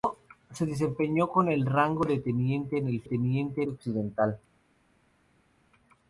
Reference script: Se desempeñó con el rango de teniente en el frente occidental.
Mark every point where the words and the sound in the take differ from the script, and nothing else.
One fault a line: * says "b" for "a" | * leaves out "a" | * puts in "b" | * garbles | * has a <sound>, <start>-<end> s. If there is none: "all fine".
* says "teniente" for "frente"